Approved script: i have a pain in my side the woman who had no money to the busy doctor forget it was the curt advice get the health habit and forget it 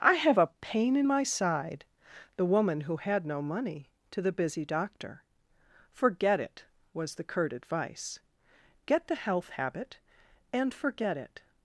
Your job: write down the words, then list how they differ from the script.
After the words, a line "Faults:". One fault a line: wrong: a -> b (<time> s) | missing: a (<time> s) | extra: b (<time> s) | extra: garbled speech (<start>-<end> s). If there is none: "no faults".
i have a pain in my side the woman who had no money to the busy doctor forget it was the curt advice get the health habit and forget it
Faults:
no faults